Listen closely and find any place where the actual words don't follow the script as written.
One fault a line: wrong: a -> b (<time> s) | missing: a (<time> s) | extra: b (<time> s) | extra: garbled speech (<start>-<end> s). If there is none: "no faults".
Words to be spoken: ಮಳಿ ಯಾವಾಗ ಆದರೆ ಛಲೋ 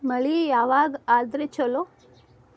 no faults